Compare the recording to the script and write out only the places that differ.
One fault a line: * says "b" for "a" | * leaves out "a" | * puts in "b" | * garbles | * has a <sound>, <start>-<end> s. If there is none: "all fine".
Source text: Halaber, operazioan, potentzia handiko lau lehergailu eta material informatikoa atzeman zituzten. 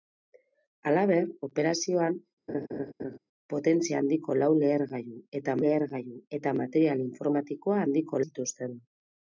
* has a laugh, 2.5-3.2 s
* puts in "lehergailu eta"
* says "handiko" for "atzeman"